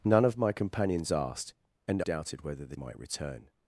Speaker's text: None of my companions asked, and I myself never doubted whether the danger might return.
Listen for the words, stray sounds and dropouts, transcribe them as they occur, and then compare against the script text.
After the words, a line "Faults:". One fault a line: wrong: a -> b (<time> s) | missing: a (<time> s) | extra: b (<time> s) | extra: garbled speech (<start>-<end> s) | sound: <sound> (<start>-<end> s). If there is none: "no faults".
None of my companions asked, and doubted whether the might return.
Faults:
missing: I myself never (2.0 s)
missing: danger (2.7 s)